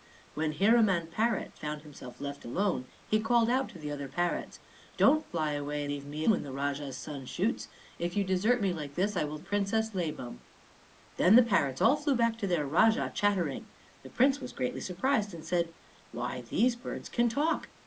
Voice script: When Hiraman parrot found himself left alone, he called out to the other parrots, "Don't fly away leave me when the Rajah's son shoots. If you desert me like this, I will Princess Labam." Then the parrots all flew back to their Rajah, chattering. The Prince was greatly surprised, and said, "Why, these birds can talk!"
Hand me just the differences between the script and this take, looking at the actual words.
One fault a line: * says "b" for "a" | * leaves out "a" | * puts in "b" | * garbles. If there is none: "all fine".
all fine